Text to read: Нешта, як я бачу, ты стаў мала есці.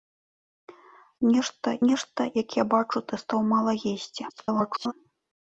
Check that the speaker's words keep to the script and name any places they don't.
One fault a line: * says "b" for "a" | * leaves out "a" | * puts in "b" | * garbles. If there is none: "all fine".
* puts in "нешта"
* garbles